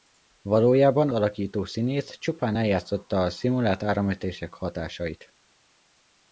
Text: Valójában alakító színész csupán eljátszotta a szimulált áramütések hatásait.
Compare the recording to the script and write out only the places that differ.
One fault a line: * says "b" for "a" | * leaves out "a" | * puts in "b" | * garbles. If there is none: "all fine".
all fine